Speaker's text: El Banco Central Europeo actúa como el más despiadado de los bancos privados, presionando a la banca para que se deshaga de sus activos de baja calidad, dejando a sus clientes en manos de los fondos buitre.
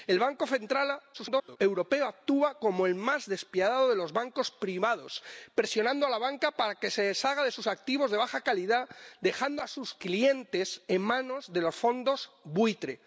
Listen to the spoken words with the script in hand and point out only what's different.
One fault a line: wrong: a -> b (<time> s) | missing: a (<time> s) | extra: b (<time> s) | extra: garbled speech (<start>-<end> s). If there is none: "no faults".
extra: garbled speech (1.1-1.6 s)